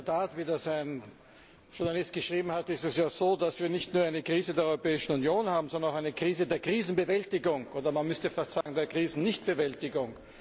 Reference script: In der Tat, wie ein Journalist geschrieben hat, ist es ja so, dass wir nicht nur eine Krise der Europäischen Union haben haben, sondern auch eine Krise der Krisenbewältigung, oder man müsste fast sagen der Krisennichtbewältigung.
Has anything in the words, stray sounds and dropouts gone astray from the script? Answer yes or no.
yes